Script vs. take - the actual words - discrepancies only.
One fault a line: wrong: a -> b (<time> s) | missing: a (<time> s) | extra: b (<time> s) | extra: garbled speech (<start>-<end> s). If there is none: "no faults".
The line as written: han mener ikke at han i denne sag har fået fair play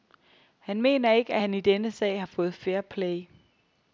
no faults